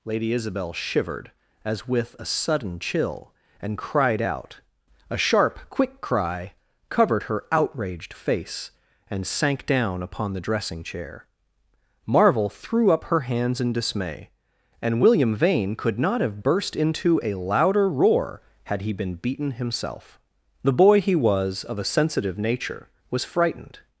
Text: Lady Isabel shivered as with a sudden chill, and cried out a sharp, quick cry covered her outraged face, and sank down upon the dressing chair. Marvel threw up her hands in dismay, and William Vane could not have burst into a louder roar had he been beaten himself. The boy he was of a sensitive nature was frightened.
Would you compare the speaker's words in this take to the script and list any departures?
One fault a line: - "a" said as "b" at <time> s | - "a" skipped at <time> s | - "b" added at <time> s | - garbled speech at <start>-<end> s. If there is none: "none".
none